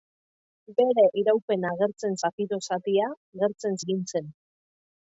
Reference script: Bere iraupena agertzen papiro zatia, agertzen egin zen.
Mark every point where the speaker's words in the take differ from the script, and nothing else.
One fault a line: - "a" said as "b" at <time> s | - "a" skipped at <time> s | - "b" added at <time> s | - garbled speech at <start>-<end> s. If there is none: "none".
none